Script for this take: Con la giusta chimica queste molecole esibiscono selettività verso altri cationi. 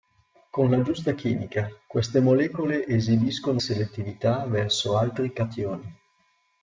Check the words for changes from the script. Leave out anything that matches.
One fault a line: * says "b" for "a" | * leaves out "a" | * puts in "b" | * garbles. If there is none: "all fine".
all fine